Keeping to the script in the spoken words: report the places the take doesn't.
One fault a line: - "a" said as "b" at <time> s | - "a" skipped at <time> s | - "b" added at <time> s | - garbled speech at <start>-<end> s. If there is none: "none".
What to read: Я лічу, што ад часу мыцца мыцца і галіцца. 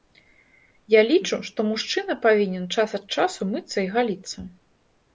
- "мужчына павінен час" added at 1.7 s
- "мыцца" skipped at 3.8 s